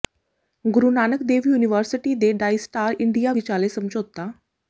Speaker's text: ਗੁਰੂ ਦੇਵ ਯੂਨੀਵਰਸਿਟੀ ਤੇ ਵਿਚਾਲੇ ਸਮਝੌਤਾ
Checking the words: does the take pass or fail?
fail